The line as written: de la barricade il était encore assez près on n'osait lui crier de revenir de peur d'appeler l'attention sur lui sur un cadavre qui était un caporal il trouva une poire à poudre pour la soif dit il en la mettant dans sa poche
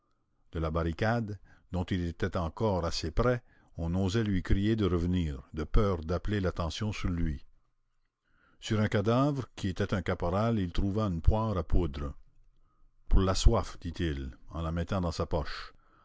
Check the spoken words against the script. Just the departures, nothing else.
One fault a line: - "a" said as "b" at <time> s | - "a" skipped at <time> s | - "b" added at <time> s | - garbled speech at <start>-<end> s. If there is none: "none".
- "dont" added at 1.7 s